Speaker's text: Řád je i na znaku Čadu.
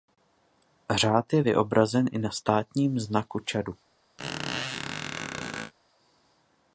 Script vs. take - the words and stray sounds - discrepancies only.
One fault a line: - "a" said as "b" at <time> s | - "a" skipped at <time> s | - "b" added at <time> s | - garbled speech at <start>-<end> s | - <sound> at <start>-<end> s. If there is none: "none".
- "vyobrazen" added at 1.4 s
- "státním" added at 2.3 s
- squeak at 4.2-5.7 s